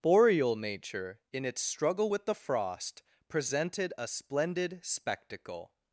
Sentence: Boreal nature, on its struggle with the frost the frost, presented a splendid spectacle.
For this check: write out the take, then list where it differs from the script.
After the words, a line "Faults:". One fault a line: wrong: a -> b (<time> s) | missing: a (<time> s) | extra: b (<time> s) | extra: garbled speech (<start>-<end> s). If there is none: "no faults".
Boreal nature, in its struggle with the frost, presented a splendid spectacle.
Faults:
wrong: on -> in (1.3 s)
missing: the frost (3.0 s)